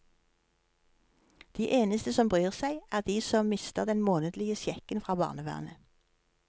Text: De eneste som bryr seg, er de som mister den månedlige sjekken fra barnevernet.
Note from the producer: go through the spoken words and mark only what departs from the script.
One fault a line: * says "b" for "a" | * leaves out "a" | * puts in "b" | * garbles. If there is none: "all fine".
all fine